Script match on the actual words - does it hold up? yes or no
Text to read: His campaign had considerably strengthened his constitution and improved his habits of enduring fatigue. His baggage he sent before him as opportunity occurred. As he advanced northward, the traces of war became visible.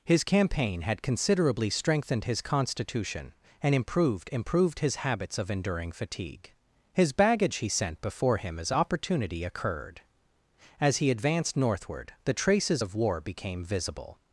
no